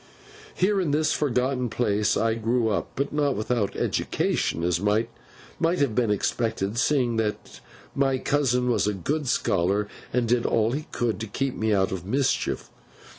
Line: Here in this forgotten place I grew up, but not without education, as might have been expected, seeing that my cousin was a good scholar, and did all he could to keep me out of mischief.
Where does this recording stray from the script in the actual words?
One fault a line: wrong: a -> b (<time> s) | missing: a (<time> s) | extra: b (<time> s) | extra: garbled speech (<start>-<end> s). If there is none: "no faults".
no faults